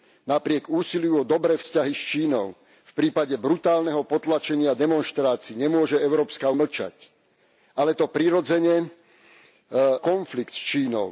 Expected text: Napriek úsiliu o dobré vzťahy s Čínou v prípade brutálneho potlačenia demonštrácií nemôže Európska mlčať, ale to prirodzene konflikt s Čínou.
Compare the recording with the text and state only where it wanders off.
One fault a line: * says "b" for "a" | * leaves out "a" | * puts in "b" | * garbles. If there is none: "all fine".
all fine